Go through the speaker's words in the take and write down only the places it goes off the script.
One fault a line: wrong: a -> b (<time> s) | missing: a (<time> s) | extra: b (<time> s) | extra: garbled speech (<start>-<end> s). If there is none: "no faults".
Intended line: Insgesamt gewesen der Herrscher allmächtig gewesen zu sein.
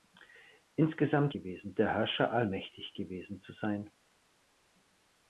no faults